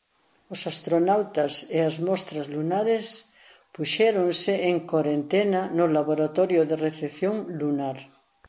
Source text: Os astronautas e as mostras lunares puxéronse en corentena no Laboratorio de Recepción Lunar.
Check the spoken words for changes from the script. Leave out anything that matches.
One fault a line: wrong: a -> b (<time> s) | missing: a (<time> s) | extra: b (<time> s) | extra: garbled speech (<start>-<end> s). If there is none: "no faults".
no faults